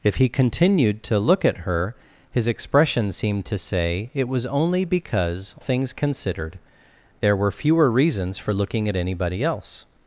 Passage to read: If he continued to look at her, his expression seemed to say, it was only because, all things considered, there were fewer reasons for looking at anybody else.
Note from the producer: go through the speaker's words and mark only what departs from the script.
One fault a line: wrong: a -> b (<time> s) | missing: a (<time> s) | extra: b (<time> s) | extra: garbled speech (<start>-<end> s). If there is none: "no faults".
missing: all (5.5 s)